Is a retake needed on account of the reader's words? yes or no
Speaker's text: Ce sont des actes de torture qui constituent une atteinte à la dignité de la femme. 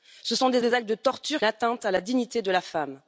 yes